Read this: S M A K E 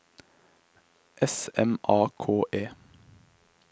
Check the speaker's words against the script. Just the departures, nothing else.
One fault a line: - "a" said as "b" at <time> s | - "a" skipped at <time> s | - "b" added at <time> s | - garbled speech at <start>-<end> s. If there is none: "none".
none